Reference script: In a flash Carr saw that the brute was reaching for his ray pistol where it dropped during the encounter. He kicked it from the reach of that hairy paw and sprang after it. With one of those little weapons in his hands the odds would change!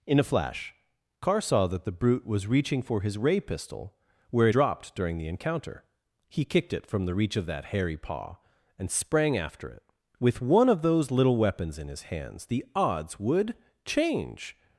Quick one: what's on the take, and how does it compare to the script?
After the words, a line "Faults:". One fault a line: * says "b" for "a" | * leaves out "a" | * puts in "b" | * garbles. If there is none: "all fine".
In a flash Carr saw that the brute was reaching for his ray pistol where it dropped during the encounter. He kicked it from the reach of that hairy paw and sprang after it. With one of those little weapons in his hands the odds would change!
Faults:
all fine